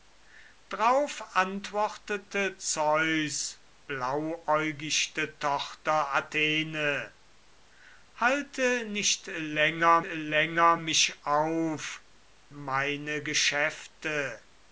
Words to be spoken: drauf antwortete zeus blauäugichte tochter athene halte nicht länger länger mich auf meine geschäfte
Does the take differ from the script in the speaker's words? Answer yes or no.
no